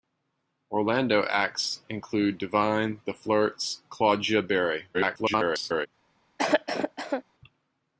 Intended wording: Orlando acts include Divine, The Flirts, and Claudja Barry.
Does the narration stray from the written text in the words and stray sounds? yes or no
yes